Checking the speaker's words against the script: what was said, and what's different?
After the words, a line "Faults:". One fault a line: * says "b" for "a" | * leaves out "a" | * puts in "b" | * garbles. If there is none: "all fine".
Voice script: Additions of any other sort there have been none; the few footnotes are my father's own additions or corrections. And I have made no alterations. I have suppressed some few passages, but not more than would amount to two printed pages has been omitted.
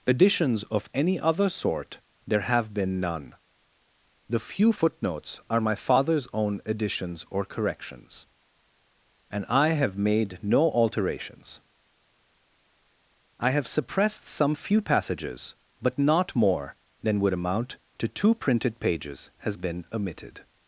Additions of any other sort there have been none; the few footnotes are my father's own additions or corrections. And I have made no alterations. I have suppressed some few passages, but not more than would amount to two printed pages has been omitted.
Faults:
all fine